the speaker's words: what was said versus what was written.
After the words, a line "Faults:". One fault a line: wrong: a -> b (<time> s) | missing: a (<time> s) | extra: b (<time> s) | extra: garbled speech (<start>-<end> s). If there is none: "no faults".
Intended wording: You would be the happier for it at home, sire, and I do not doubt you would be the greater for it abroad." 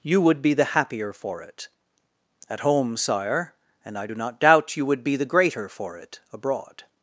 You would be the happier for it at home, sire, and I do not doubt you would be the greater for it abroad."
Faults:
no faults